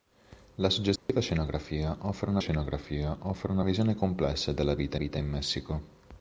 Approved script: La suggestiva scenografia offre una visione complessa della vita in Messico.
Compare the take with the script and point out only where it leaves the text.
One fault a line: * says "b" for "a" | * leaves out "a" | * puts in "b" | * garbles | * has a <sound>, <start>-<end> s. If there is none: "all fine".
* has a dropout, 1.0-1.1 s
* puts in "scenografia offre una"
* puts in "vita"